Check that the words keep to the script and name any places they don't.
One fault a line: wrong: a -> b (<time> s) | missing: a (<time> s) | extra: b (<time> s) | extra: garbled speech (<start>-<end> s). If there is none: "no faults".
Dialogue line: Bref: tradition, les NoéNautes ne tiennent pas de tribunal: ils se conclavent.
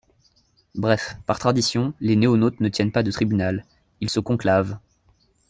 extra: par (1.3 s)